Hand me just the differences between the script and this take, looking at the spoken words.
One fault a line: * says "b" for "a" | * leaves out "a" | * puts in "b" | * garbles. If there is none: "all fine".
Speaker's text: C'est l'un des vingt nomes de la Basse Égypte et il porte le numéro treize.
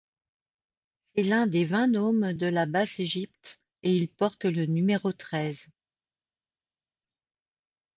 all fine